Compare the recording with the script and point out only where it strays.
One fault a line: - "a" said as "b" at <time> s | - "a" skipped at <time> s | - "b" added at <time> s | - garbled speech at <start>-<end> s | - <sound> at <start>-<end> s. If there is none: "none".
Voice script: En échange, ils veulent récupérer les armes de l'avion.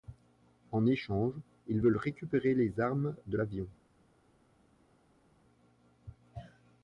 none